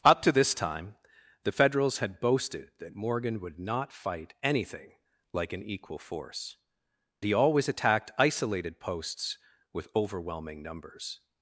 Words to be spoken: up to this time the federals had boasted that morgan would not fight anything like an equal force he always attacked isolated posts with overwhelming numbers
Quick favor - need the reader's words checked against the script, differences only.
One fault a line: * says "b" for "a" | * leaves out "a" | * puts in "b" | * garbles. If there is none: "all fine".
all fine